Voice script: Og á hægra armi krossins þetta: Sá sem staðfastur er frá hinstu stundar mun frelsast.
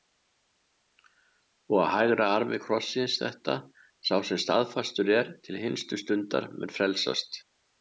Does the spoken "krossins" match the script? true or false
true